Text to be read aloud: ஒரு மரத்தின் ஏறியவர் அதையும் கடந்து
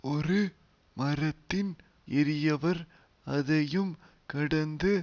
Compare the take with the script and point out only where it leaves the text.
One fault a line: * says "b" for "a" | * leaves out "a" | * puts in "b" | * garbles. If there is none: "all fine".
all fine